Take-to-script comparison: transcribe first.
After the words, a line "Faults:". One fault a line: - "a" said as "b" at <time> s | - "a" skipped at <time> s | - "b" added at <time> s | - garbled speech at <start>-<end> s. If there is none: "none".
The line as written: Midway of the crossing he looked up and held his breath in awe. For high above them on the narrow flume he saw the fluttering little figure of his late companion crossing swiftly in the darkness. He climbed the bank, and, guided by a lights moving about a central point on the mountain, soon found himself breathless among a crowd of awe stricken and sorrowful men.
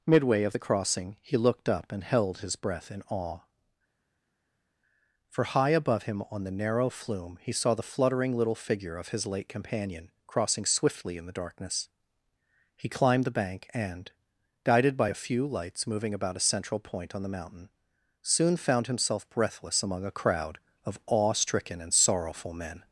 Midway of the crossing he looked up and held his breath in awe. For high above him on the narrow flume he saw the fluttering little figure of his late companion crossing swiftly in the darkness. He climbed the bank, and, guided by a few lights moving about a central point on the mountain, soon found himself breathless among a crowd of awe stricken and sorrowful men.
Faults:
- "them" said as "him" at 6.0 s
- "few" added at 15.1 s